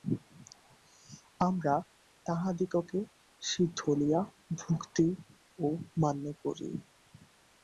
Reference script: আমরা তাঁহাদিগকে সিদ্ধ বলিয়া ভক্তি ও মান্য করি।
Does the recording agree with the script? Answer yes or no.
yes